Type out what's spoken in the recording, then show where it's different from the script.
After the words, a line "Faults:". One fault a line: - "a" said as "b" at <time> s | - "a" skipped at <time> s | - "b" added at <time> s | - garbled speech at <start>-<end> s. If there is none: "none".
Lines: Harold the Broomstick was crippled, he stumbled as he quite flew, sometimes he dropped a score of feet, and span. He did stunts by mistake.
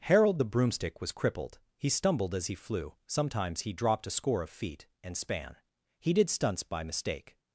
Harold the Broomstick was crippled, he stumbled as he flew, sometimes he dropped a score of feet, and span. He did stunts by mistake.
Faults:
- "quite" skipped at 2.5 s